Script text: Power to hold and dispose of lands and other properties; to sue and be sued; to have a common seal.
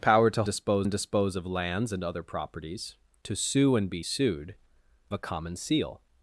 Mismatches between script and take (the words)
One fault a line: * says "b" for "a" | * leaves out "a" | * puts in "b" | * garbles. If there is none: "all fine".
* says "dispose" for "hold"
* leaves out "to have"